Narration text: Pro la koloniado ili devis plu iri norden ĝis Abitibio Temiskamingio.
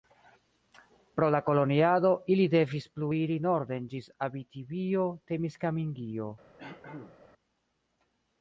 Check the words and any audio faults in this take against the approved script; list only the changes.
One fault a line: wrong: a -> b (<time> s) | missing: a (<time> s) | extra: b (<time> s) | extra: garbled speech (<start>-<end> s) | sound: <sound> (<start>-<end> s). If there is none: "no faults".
sound: throat clearing (6.6-7.2 s)